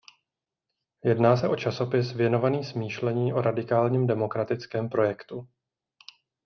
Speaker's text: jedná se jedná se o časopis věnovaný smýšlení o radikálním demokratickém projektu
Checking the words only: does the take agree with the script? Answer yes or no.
no